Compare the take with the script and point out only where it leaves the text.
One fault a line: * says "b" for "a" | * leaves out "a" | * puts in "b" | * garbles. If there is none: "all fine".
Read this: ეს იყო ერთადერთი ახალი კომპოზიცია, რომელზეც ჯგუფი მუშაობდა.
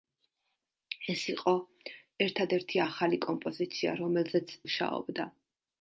* leaves out "ჯგუფი"